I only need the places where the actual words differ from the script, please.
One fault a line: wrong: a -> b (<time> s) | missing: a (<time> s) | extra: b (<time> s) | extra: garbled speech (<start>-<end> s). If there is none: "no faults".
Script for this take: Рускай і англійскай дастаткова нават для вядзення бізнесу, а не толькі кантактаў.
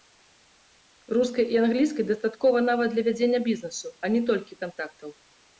no faults